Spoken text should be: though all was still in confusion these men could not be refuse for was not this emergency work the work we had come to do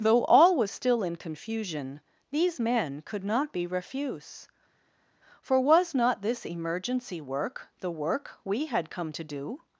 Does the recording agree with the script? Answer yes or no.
yes